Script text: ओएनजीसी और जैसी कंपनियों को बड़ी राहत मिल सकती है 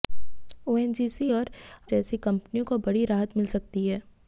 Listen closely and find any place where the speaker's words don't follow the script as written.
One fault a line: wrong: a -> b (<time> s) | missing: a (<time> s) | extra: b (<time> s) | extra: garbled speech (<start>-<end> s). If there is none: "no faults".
no faults